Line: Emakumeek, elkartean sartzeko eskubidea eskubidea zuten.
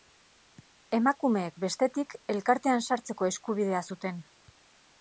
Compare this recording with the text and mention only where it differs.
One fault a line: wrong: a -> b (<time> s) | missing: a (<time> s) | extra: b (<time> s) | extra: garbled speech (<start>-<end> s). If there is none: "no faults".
extra: bestetik (1.6 s)
missing: eskubidea (3.9 s)